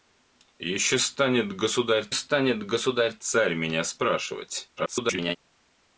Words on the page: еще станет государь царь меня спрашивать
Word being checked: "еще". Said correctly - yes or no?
yes